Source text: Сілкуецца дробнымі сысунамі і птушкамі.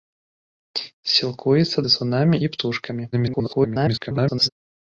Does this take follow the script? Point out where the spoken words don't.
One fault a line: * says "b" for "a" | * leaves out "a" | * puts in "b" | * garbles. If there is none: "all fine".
* leaves out "дробнымі"
* garbles